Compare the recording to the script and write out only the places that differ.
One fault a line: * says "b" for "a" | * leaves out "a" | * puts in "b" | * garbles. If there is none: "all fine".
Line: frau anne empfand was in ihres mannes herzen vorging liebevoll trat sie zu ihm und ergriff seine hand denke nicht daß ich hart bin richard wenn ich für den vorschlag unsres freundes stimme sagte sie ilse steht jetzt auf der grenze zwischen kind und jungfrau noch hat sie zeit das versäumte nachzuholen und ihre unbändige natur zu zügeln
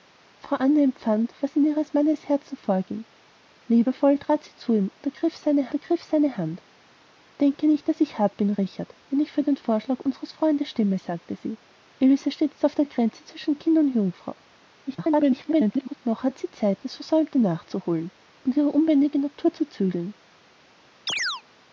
* puts in "ergriff seine"
* garbles